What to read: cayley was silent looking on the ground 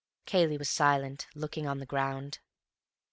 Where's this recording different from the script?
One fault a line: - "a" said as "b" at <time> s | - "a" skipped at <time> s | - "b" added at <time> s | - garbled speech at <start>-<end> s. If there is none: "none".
none